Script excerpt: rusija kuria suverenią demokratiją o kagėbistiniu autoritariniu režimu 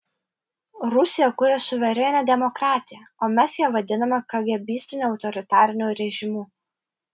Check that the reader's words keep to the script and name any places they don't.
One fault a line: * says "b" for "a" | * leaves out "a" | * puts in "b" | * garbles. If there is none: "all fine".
* puts in "mes ją vadiname"